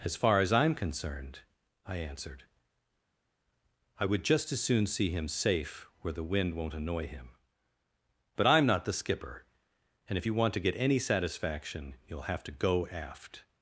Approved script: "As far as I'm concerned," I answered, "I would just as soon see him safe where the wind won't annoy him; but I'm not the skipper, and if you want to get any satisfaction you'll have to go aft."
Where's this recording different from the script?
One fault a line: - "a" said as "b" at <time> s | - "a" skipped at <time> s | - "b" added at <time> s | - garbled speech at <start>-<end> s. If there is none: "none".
none